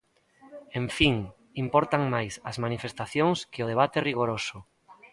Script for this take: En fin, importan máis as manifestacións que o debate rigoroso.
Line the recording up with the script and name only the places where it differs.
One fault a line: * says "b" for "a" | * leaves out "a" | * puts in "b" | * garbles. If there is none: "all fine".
all fine